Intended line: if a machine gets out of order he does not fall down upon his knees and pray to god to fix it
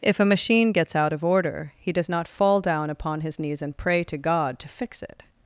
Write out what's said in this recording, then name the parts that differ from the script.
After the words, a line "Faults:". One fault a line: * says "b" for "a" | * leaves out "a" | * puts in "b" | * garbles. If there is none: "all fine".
if a machine gets out of order he does not fall down upon his knees and pray to god to fix it
Faults:
all fine